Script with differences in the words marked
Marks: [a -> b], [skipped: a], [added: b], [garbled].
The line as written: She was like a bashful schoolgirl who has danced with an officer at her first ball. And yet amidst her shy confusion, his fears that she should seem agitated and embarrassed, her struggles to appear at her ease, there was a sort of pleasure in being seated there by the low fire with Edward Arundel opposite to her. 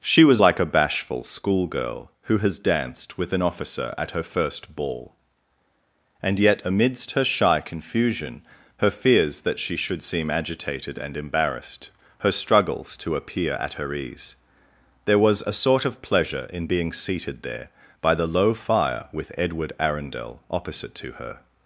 She was like a bashful schoolgirl who has danced with an officer at her first ball. And yet amidst her shy confusion, [his -> her] fears that she should seem agitated and embarrassed, her struggles to appear at her ease, there was a sort of pleasure in being seated there by the low fire with Edward Arundel opposite to her.